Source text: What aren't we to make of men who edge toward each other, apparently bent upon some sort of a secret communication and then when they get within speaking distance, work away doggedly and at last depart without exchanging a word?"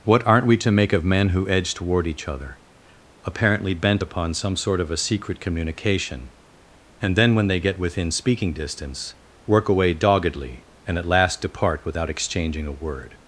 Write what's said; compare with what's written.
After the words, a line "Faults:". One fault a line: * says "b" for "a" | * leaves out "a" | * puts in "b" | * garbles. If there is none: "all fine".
What aren't we to make of men who edge toward each other, apparently bent upon some sort of a secret communication and then when they get within speaking distance, work away doggedly and at last depart without exchanging a word?"
Faults:
all fine